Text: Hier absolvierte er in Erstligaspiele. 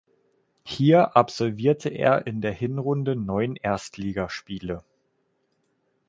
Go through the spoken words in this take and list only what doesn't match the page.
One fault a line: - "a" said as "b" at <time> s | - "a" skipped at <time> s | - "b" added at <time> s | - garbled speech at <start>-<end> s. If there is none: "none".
- "der Hinrunde neun" added at 2.4 s